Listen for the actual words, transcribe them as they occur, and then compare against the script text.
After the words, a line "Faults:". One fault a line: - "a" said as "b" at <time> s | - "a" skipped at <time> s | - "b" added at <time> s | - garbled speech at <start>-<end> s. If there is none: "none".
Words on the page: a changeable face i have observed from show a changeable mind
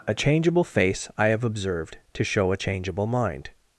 a changeable face i have observed to show a changeable mind
Faults:
- "from" said as "to" at 2.1 s